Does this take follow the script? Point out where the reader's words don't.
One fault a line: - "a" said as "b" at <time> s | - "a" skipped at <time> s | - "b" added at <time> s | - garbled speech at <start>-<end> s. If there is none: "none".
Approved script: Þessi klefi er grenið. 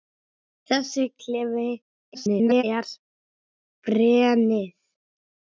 - garbled speech at 2.1-2.6 s